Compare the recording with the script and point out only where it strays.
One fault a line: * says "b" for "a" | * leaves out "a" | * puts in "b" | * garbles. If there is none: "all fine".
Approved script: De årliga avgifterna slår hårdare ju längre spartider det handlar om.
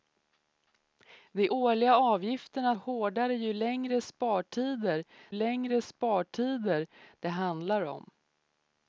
* leaves out "slår"
* puts in "längre spartider"